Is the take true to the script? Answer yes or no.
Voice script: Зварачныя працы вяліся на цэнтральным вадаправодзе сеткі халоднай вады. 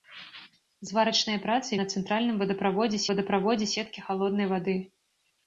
no